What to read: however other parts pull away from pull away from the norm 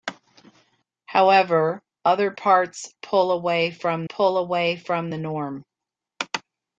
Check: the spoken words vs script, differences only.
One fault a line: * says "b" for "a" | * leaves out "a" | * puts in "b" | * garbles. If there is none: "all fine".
all fine